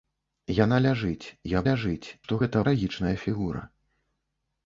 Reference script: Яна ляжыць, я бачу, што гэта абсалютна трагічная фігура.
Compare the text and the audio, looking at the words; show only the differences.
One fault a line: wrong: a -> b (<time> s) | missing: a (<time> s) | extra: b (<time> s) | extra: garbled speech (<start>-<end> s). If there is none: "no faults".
wrong: бачу -> ляжыць (1.7 s)
missing: абсалютна (2.6 s)